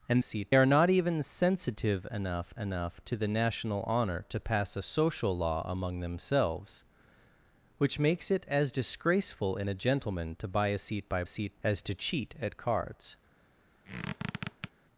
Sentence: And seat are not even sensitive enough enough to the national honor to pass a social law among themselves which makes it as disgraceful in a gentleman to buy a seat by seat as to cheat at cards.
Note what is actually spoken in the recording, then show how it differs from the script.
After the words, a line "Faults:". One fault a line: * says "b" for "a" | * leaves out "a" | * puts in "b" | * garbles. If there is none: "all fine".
And seat are not even sensitive enough enough to the national honor to pass a social law among themselves which makes it as disgraceful in a gentleman to buy a seat by seat as to cheat at cards.
Faults:
all fine